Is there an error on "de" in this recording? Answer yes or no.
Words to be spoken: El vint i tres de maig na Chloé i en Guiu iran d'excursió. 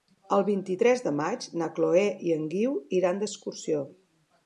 no